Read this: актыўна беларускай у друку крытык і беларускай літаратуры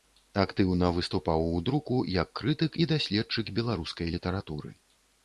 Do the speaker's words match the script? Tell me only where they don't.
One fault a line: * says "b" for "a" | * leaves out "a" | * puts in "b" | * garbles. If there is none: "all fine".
* says "выступаў" for "беларускай"
* puts in "як"
* puts in "даследчык"